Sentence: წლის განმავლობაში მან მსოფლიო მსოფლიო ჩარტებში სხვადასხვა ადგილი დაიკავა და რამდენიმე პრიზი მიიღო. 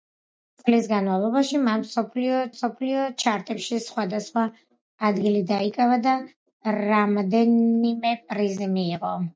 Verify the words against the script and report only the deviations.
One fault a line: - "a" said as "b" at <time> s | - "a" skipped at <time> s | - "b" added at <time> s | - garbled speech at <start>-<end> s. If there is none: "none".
none